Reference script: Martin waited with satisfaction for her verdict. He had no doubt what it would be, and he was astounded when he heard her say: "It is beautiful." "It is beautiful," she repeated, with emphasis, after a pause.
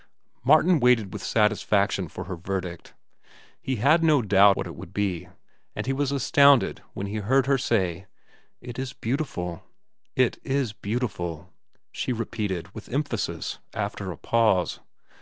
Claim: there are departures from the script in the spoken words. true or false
false